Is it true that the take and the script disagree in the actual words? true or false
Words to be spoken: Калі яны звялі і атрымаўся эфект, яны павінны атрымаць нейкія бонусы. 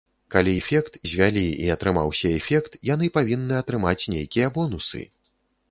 true